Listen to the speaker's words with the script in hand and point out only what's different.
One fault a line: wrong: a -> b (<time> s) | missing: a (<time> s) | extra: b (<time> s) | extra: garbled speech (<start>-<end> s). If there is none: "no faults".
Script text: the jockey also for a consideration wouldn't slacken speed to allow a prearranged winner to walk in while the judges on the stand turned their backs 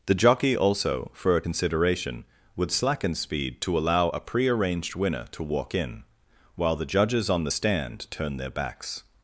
wrong: wouldn't -> would (2.5 s)